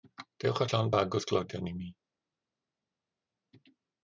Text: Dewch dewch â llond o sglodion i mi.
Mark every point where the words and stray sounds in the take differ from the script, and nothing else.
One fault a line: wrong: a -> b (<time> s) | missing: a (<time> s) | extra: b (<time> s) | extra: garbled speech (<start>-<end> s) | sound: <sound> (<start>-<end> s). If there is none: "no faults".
missing: dewch (0.6 s)
extra: bag (1.0 s)